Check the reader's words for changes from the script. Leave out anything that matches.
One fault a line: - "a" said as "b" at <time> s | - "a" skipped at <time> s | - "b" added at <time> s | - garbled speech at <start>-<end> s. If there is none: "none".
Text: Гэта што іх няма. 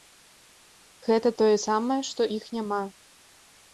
- "тое самае" added at 1.4 s